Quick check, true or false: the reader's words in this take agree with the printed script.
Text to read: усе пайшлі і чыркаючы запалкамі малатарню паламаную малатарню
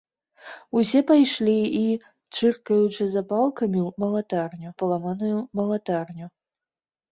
true